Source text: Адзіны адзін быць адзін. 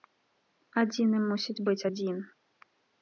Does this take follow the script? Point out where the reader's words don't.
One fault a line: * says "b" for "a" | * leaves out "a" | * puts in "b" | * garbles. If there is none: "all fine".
* says "мусіць" for "адзін"